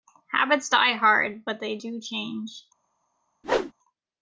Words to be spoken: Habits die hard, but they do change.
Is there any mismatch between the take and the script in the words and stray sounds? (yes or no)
yes